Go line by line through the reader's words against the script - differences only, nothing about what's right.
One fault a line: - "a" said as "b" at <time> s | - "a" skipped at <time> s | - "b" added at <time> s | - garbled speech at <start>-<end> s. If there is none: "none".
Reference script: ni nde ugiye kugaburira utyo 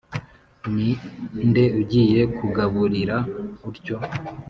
none